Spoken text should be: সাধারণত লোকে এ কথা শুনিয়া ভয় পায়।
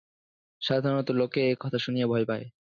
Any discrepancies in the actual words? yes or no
no